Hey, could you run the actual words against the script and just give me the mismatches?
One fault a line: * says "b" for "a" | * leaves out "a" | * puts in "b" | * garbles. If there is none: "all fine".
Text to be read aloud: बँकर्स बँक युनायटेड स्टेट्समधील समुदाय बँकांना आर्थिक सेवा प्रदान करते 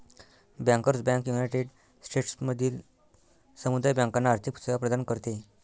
all fine